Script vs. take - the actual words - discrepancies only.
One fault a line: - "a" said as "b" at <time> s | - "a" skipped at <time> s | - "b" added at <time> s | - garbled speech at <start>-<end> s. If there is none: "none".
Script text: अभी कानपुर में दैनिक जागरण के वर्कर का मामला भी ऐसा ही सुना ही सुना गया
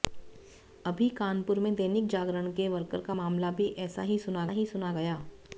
none